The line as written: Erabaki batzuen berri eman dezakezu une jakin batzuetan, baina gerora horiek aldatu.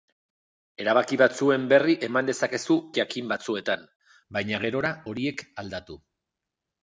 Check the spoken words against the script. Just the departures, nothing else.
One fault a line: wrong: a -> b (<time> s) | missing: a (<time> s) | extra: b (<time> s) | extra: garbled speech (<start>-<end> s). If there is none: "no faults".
missing: une (2.8 s)